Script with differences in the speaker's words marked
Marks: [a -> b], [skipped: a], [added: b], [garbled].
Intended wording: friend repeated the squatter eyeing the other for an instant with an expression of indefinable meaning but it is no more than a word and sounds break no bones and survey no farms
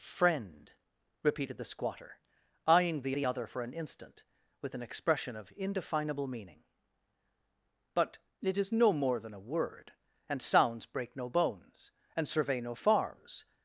friend repeated the squatter eyeing the [added: the] other for an instant with an expression of indefinable meaning but it is no more than a word and sounds break no bones and survey no farms